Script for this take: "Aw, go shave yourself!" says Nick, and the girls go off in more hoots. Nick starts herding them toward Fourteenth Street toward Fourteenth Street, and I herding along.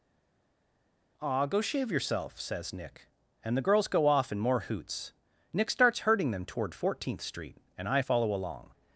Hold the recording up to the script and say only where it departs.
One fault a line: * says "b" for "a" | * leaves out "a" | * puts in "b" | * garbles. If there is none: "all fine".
* leaves out "toward Fourteenth Street"
* says "follow" for "herding"